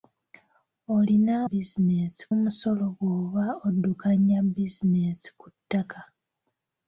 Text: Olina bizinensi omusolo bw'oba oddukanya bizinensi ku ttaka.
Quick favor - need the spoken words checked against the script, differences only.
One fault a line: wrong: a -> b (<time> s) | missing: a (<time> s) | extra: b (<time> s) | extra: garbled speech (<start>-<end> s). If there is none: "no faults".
no faults